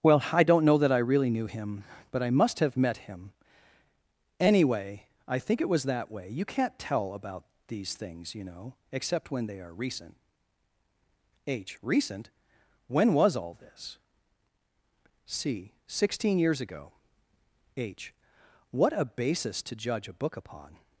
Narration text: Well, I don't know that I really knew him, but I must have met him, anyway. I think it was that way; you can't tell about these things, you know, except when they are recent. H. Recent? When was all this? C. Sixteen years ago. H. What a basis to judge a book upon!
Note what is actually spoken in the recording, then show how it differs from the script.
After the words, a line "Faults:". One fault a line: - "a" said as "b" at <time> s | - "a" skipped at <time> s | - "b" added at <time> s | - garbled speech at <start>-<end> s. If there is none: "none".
Well, I don't know that I really knew him, but I must have met him, anyway. I think it was that way; you can't tell about these things, you know, except when they are recent. H. Recent? When was all this? C. Sixteen years ago. H. What a basis to judge a book upon!
Faults:
none